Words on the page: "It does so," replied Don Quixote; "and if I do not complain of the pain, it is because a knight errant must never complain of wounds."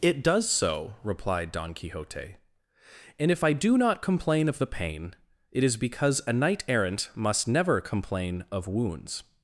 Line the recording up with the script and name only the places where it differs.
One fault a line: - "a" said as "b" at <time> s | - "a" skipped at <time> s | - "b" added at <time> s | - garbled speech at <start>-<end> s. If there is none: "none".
none